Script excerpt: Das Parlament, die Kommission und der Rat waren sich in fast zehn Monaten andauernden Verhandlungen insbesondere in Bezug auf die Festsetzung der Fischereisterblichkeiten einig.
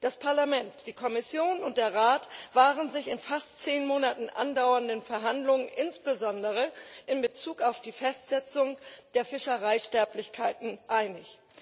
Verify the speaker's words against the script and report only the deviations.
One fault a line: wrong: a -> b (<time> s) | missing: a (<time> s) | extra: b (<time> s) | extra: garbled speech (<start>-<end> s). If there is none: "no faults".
no faults